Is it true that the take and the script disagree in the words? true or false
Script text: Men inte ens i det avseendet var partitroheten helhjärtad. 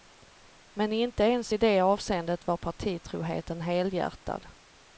false